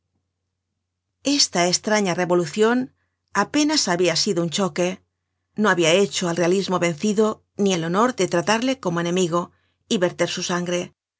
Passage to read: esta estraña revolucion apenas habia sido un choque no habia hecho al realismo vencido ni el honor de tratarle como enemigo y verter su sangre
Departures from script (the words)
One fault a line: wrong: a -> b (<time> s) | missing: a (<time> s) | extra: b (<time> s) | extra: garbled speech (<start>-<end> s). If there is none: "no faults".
no faults